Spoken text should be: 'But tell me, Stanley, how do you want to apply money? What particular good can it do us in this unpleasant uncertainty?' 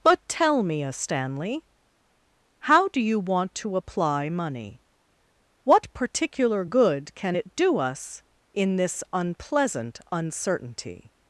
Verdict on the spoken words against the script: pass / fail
fail